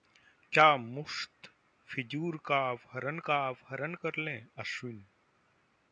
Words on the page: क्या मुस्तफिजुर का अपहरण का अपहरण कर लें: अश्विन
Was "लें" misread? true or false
false